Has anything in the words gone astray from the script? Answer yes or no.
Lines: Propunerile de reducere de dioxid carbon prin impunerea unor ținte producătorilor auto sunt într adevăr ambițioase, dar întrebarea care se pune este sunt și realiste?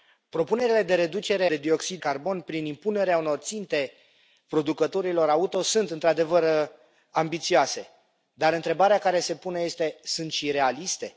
no